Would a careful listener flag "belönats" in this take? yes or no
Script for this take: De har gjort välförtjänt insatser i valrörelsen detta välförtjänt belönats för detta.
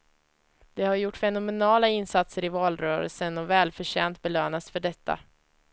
no